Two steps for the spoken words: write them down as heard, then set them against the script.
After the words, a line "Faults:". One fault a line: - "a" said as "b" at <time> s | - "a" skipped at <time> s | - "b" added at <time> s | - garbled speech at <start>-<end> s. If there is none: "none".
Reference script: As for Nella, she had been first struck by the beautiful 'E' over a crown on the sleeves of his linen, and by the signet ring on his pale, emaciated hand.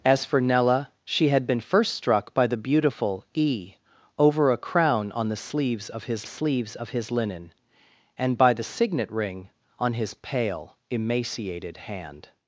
As for Nella, she had been first struck by the beautiful 'E' over a crown on the sleeves of his sleeves of his linen, and by the signet ring on his pale, emaciated hand.
Faults:
- "sleeves of his" added at 6.2 s